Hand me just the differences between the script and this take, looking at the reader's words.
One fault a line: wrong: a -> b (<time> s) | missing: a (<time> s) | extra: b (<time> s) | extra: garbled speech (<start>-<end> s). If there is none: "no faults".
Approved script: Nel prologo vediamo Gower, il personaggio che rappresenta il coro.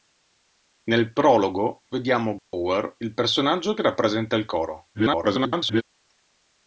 extra: garbled speech (4.9-5.8 s)